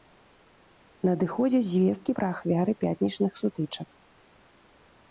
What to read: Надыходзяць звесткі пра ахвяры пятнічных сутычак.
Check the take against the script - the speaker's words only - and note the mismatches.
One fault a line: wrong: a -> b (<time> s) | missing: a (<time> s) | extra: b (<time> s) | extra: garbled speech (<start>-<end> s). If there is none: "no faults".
no faults